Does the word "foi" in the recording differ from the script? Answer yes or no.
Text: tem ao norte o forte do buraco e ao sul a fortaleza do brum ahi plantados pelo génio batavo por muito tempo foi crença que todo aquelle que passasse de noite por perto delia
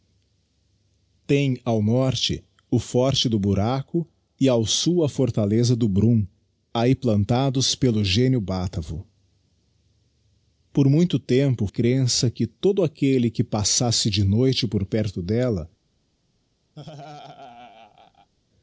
yes